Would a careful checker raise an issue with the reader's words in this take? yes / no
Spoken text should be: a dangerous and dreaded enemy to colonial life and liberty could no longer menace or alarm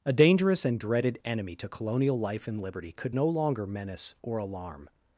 no